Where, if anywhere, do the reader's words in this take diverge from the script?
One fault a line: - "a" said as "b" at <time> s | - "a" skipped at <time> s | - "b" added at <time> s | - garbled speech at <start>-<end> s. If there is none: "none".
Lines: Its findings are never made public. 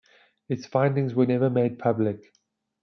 - "are" said as "were" at 1.1 s